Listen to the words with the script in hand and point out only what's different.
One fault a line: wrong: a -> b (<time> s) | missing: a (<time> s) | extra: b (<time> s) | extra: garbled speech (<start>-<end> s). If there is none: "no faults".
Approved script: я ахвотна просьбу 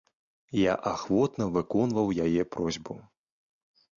extra: выконваў яе (1.6 s)